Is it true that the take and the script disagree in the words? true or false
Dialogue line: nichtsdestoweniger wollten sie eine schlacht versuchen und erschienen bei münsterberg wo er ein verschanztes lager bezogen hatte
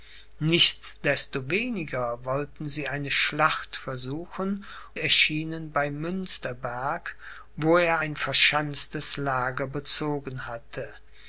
true